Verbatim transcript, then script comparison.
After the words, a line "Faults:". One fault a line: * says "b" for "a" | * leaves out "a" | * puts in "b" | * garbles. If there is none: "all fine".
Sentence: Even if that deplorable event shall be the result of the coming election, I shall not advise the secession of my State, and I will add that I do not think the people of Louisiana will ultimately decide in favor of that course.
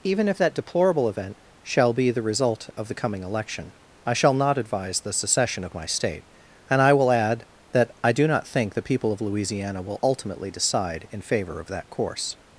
Even if that deplorable event shall be the result of the coming election, I shall not advise the secession of my State, and I will add that I do not think the people of Louisiana will ultimately decide in favor of that course.
Faults:
all fine